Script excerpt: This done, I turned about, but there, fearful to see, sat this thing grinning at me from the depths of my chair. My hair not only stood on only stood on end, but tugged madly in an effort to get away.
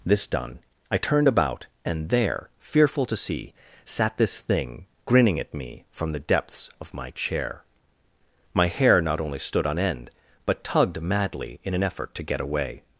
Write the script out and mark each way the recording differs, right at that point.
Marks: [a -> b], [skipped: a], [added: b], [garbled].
This done, I turned about, [but -> and] there, fearful to see, sat this thing grinning at me from the depths of my chair. My hair not only stood on [skipped: only stood on] end, but tugged madly in an effort to get away.